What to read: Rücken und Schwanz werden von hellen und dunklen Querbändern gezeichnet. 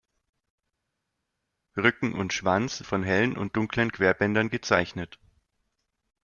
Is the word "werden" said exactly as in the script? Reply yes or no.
no